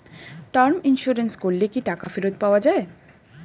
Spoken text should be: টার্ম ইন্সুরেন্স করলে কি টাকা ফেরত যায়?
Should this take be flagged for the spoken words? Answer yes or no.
yes